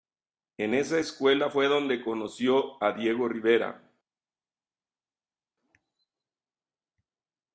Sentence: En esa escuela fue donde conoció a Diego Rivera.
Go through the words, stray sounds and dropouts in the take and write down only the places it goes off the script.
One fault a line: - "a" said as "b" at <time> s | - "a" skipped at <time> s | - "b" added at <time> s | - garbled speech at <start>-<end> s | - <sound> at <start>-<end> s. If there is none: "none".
none